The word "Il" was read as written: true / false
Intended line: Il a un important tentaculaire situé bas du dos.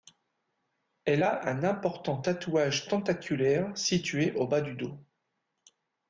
false